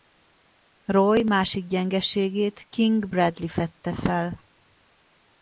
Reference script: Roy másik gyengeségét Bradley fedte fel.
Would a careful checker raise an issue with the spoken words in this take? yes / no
yes